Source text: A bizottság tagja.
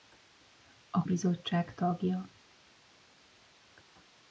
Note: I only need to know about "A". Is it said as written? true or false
true